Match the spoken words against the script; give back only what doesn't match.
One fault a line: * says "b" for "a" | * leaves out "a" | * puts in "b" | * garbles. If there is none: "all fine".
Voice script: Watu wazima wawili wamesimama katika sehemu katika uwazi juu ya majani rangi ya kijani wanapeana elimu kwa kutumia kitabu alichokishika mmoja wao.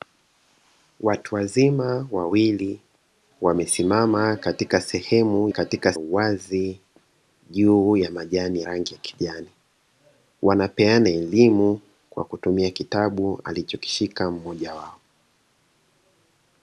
all fine